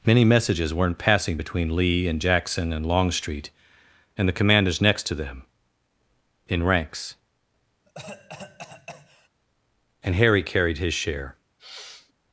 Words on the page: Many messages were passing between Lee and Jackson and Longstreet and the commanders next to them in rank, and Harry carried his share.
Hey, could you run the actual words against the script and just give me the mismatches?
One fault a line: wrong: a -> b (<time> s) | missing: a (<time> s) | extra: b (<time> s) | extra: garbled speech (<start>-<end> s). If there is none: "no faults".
wrong: were -> weren't (0.7 s)
wrong: rank -> ranks (6.6 s)